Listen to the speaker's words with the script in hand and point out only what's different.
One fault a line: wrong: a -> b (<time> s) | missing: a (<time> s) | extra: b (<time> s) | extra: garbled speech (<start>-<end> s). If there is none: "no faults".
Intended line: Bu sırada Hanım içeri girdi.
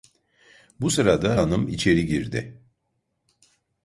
no faults